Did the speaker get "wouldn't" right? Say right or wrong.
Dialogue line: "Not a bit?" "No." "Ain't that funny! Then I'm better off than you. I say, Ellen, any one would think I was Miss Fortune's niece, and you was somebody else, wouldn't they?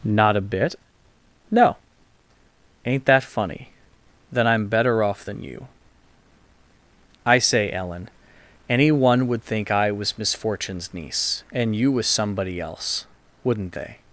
right